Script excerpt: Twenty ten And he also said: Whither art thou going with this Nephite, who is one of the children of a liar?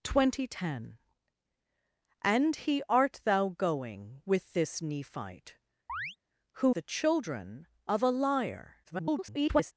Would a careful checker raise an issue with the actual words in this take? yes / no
yes